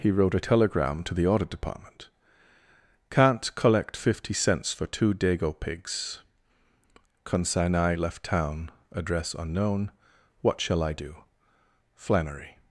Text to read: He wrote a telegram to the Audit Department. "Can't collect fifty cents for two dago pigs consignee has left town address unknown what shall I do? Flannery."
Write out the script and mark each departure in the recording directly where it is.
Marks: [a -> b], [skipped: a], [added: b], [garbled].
He wrote a telegram to the Audit Department. "Can't collect fifty cents for two dago pigs consignee [skipped: has] left town address unknown what shall I do? Flannery."